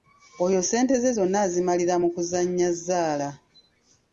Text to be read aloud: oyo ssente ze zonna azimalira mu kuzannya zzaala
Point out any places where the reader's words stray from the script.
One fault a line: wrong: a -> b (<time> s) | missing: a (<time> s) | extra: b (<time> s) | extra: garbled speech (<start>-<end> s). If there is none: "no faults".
no faults